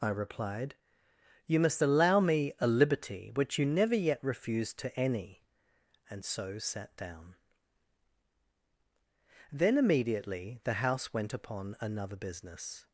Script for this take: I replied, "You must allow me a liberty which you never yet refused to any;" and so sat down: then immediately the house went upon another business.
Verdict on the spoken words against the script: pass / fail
pass